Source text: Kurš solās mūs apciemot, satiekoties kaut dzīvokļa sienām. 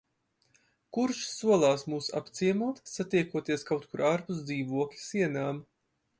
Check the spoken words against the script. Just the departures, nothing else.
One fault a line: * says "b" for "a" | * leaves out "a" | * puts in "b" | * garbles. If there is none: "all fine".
* puts in "kur ārpus"